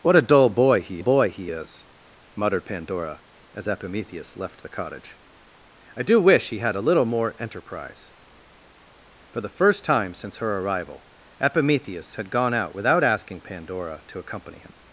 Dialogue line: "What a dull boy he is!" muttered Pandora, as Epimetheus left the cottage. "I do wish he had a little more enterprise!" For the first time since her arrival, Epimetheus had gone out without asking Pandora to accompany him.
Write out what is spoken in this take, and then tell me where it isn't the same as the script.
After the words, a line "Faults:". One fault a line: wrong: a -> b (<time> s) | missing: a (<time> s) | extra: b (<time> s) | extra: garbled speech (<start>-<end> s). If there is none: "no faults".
"What a dull boy he boy he is!" muttered Pandora, as Epimetheus left the cottage. "I do wish he had a little more enterprise!" For the first time since her arrival, Epimetheus had gone out without asking Pandora to accompany him.
Faults:
extra: boy he (1.0 s)